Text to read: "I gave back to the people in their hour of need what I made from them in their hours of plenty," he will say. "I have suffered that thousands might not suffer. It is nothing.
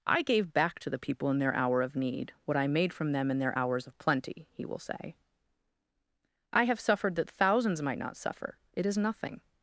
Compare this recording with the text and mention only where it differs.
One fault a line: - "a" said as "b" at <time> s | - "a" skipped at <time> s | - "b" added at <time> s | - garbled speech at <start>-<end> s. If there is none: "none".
none